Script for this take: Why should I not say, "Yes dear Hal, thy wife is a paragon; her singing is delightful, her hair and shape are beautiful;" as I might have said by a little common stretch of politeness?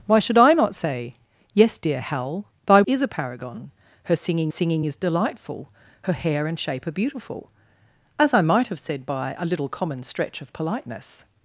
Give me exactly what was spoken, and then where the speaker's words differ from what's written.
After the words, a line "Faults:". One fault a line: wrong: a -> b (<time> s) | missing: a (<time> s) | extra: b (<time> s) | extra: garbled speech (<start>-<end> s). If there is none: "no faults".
Why should I not say, "Yes dear Hal, thy is a paragon; her singing singing is delightful, her hair and shape are beautiful;" as I might have said by a little common stretch of politeness?
Faults:
missing: wife (2.8 s)
extra: singing (4.5 s)